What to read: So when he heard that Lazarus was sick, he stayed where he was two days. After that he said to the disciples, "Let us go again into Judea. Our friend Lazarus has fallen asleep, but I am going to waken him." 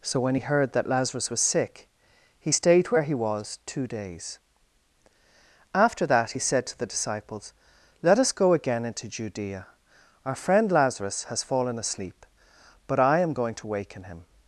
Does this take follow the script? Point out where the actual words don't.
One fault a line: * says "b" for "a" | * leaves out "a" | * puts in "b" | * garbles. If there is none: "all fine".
all fine